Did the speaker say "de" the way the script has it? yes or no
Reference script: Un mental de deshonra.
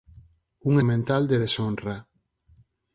yes